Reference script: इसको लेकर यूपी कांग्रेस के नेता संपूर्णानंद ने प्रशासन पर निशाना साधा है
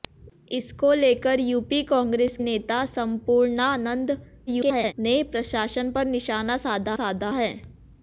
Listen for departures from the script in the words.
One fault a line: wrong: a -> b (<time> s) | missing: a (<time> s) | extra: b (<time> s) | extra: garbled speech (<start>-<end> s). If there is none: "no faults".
missing: के (2.4 s)
extra: garbled speech (4.5-4.9 s)
extra: साधा (6.9 s)